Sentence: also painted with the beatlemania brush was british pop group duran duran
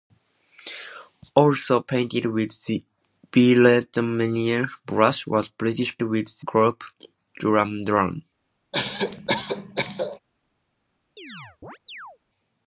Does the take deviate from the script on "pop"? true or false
true